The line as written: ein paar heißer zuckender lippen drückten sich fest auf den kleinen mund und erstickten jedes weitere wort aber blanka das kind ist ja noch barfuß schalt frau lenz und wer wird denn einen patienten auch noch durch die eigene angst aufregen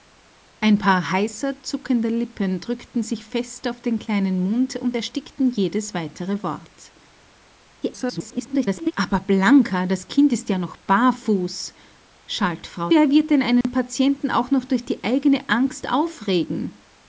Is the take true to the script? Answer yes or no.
no